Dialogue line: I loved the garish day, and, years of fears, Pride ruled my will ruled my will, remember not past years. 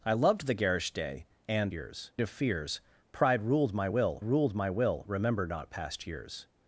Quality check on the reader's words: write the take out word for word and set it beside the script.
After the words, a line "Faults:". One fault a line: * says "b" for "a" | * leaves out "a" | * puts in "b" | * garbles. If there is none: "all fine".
I loved the garish day, and, years of fears, Pride ruled my will ruled my will, remember not past years.
Faults:
all fine